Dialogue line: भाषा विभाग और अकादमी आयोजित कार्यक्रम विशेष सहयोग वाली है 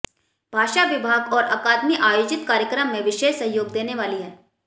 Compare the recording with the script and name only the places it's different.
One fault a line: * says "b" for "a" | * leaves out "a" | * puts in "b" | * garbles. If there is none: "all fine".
* puts in "में"
* puts in "देने"